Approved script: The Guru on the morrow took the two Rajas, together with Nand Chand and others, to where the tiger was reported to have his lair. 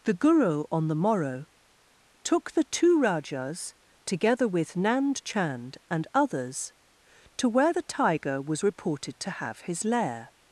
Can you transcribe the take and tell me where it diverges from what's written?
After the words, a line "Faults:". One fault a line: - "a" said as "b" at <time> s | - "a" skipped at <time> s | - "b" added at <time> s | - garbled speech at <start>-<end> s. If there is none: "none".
The Guru on the morrow took the two Rajas, together with Nand Chand and others, to where the tiger was reported to have his lair.
Faults:
none